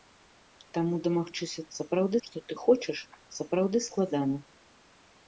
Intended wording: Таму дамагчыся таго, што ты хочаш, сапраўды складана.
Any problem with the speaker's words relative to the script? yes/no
yes